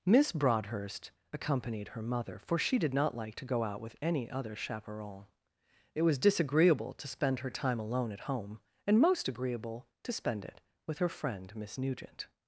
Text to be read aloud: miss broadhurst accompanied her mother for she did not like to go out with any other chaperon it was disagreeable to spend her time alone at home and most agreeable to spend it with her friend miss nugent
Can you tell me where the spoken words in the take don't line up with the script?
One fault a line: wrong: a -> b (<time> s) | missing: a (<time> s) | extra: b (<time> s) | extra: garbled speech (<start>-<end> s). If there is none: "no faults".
no faults